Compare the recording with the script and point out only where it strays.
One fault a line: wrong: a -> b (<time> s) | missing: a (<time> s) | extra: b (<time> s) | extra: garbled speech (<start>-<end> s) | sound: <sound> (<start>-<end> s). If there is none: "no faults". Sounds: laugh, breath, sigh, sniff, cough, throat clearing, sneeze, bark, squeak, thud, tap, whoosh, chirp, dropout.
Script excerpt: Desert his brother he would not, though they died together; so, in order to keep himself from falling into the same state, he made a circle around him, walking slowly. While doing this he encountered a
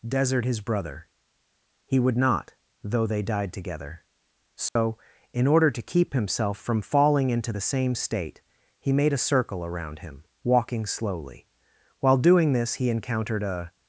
sound: dropout (4.7-4.8 s)